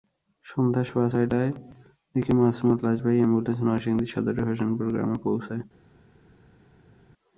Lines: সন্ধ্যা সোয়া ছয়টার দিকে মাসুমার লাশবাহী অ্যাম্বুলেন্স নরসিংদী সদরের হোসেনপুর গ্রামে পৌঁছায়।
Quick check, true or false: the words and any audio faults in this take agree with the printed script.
true